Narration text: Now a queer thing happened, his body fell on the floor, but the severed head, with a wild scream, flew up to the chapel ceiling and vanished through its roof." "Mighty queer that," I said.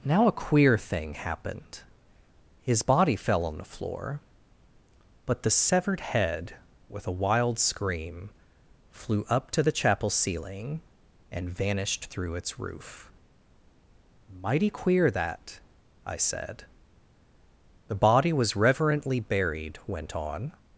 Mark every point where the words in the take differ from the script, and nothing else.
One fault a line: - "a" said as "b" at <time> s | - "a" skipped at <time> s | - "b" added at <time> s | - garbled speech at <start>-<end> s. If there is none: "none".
- "The body was reverently buried went on" added at 17.9 s